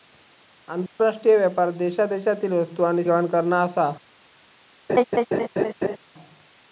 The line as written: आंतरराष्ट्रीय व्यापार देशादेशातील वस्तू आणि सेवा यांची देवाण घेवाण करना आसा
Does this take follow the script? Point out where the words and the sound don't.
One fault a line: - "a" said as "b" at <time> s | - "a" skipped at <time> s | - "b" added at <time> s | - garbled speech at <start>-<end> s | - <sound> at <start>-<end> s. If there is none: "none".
- dropout at 0.9-1.0 s
- "सेवा यांची देवाण" skipped at 3.0 s
- laugh at 4.9-6.0 s